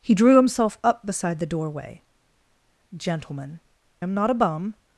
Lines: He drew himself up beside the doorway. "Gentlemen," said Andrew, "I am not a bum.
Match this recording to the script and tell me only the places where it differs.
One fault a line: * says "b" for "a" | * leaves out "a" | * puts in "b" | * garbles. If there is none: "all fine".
* leaves out "said Andrew I"